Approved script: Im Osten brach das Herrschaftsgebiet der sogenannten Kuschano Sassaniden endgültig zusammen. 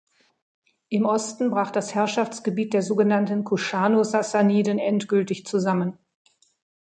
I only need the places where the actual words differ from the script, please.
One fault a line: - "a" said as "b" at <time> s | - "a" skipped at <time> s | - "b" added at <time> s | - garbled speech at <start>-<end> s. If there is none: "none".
none